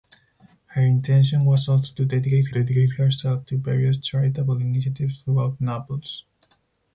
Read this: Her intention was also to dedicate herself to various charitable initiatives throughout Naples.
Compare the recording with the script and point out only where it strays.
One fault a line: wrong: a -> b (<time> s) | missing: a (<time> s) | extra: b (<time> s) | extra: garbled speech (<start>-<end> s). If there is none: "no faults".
extra: dedicate (2.5 s)